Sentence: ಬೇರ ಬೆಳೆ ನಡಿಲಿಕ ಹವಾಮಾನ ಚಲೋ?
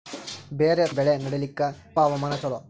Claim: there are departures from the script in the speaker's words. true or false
false